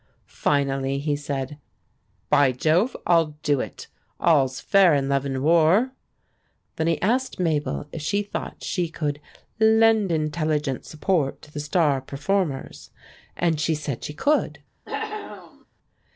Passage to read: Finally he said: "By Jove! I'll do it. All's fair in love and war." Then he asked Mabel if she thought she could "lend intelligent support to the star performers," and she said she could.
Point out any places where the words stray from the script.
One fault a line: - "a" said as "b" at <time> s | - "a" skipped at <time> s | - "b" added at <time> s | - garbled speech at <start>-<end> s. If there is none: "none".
none